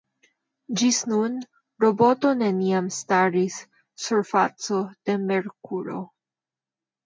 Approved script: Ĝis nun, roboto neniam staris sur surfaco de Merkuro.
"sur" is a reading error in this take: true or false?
true